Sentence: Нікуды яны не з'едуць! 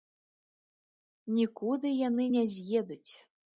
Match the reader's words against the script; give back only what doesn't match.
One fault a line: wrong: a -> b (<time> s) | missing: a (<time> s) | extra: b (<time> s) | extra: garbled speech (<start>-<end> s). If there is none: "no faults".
no faults